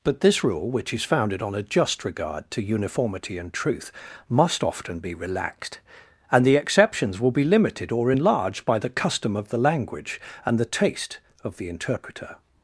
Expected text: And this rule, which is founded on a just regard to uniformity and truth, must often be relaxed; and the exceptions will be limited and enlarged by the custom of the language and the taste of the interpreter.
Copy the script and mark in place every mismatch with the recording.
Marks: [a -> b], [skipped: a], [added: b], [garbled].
[And -> But] this rule, which is founded on a just regard to uniformity and truth, must often be relaxed; and the exceptions will be limited [and -> or] enlarged by the custom of the language and the taste of the interpreter.